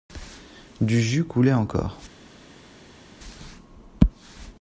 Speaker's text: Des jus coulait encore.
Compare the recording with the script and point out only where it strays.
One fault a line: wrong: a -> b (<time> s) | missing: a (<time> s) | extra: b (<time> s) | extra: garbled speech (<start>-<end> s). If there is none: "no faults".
wrong: Des -> Du (0.8 s)